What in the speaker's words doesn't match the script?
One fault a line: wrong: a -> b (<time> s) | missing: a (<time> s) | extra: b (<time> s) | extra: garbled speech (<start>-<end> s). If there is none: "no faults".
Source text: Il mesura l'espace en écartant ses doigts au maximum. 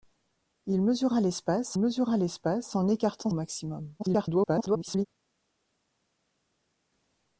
extra: mesura l'espace (1.8 s)
missing: ses doigts (3.3 s)
extra: garbled speech (4.0-5.1 s)